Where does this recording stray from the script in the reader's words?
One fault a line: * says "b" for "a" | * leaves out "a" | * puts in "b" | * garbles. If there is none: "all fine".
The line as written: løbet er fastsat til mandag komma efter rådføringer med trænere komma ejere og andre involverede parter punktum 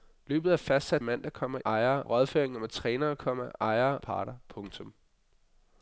* leaves out "til"
* says "ejere" for "efter"
* leaves out "og andre involverede"